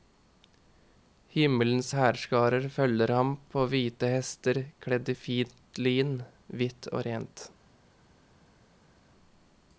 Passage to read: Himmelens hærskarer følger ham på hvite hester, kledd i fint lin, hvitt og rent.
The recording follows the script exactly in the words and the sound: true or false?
true